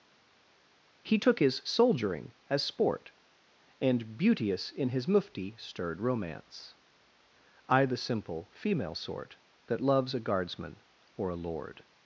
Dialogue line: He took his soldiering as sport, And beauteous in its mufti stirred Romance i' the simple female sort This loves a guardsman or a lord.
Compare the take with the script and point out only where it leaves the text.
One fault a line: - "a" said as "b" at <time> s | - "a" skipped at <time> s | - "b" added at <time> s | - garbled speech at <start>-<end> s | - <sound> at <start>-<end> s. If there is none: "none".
- "its" said as "his" at 4.9 s
- "This" said as "That" at 9.7 s